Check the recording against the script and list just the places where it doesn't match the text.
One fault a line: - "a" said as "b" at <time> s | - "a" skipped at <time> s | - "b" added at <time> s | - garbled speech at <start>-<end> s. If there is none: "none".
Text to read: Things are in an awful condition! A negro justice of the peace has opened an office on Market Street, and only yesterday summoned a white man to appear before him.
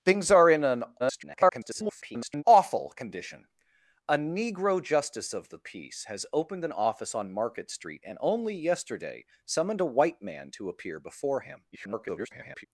- garbled speech at 1.0-2.4 s
- garbled speech at 11.7-12.7 s